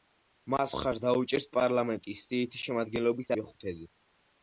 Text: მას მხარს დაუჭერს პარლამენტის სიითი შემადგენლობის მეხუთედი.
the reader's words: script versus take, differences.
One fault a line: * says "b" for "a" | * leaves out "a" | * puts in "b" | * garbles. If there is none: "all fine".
all fine